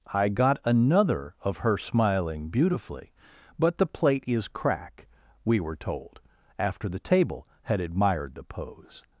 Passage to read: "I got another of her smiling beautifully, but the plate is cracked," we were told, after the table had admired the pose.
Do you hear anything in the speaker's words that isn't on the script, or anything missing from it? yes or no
yes